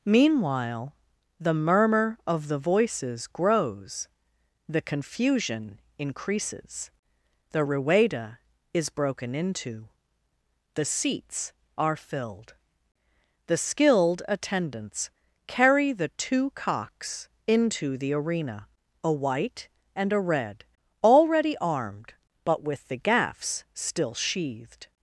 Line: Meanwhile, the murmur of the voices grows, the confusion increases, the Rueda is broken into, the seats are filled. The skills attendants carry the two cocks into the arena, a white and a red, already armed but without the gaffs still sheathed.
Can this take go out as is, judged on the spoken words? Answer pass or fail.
fail